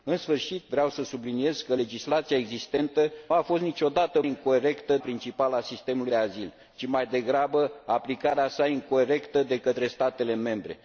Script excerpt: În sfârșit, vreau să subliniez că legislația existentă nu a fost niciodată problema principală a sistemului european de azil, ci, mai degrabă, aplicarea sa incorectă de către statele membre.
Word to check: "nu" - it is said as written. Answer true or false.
false